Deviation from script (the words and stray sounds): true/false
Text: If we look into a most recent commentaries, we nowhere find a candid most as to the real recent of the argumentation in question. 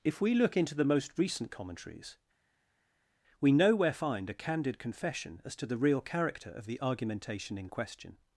true